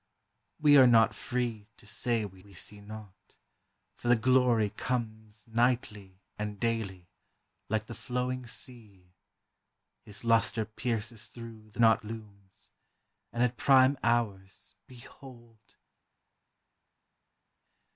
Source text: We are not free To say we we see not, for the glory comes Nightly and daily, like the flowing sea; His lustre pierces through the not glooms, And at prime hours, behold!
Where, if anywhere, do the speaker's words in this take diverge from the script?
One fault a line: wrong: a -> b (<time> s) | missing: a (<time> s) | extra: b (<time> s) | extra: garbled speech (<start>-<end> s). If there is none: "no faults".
no faults